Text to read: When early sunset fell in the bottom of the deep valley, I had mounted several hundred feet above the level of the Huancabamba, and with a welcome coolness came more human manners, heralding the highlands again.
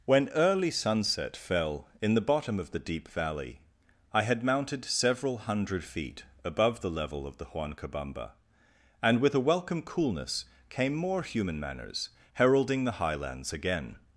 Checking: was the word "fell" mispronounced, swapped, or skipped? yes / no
no